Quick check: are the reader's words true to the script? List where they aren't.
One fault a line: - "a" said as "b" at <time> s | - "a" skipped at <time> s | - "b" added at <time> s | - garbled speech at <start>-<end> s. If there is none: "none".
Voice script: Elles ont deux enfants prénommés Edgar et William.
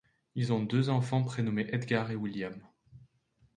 - "Elles" said as "Ils" at 0.3 s